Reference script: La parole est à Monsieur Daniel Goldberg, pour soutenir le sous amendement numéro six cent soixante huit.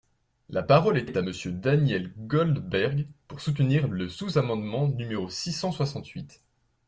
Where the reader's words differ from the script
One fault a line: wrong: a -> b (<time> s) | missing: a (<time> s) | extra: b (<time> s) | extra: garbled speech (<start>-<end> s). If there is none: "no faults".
extra: est (1.0 s)